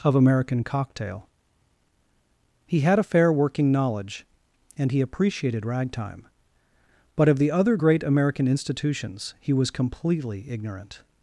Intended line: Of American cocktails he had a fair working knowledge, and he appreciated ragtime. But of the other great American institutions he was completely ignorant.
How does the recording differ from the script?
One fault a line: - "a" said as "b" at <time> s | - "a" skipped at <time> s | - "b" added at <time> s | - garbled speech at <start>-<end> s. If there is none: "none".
- "cocktails" said as "cocktail" at 0.6 s